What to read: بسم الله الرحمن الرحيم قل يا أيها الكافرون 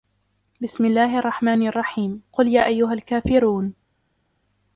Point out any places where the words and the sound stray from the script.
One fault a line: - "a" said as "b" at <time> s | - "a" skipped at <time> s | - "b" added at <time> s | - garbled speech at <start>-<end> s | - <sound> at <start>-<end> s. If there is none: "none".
none